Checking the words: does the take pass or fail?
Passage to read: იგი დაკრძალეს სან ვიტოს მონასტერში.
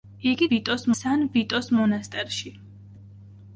fail